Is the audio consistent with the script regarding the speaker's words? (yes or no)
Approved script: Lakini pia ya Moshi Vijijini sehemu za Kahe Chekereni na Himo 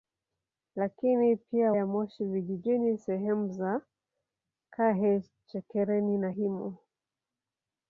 yes